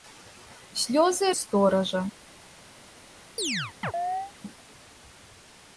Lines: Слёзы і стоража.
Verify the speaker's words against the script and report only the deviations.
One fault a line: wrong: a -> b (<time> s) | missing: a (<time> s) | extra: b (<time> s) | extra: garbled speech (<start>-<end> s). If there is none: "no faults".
no faults